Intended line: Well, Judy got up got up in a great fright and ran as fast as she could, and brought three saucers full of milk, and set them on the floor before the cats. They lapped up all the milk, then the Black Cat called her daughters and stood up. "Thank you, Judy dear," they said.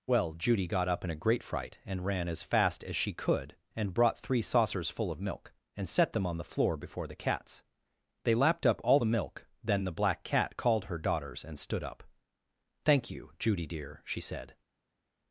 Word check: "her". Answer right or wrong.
right